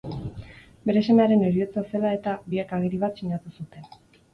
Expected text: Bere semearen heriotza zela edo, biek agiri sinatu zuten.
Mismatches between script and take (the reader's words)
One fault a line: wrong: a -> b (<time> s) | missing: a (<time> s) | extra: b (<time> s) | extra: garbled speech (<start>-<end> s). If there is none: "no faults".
wrong: edo -> eta (2.2 s)
extra: bat (3.1 s)